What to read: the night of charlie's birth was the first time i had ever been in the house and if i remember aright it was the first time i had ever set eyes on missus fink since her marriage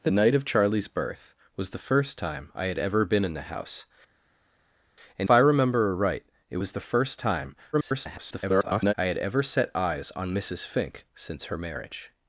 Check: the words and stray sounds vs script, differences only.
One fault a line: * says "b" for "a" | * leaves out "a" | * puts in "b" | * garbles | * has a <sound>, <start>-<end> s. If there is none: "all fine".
* leaves out "if"
* garbles